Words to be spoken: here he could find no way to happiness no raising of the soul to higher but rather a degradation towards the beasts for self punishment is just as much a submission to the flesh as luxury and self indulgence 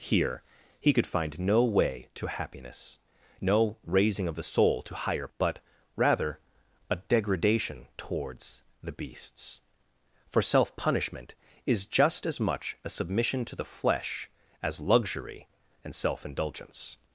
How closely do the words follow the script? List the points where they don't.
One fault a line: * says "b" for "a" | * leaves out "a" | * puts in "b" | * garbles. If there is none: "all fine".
all fine